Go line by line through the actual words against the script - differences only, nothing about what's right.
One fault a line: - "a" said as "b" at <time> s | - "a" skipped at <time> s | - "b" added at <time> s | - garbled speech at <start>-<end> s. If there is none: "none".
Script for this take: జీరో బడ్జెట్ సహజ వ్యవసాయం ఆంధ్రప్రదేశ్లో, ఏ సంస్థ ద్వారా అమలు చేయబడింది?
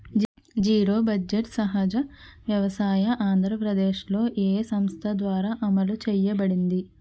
none